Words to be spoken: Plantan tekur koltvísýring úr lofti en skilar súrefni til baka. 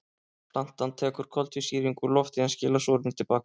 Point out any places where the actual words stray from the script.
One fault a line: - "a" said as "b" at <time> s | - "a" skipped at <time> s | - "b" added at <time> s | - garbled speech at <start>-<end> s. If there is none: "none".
none